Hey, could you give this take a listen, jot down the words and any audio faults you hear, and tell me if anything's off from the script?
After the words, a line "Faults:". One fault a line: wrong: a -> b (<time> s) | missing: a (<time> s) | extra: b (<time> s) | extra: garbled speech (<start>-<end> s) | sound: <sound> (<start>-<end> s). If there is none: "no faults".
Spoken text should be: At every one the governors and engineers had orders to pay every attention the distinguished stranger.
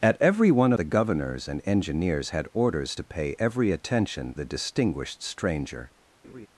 At every one the governors and engineers had orders to pay every attention the distinguished stranger.
Faults:
sound: laugh (6.2-6.5 s)